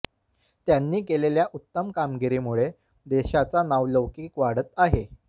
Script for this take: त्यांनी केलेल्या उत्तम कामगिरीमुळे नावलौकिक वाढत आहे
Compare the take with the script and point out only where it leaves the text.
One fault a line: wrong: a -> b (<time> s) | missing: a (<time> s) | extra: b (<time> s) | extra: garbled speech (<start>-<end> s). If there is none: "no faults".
extra: देशाचा (3.1 s)